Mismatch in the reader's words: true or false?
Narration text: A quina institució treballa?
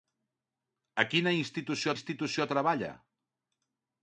true